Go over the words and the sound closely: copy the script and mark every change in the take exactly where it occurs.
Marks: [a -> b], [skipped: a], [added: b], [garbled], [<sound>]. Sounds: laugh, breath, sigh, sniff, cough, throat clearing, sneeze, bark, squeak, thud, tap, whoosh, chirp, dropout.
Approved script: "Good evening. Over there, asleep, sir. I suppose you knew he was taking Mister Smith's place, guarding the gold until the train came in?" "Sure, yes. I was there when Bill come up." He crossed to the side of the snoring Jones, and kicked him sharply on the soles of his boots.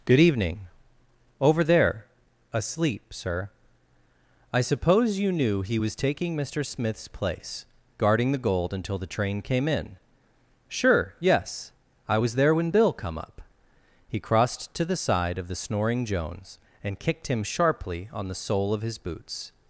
"Good evening. Over there, asleep, sir. I suppose you knew he was taking Mister Smith's place, guarding the gold until the train came in?" "Sure, yes. I was there when Bill come up." He crossed to the side of the snoring Jones, and kicked him sharply on the [soles -> sole] of his boots.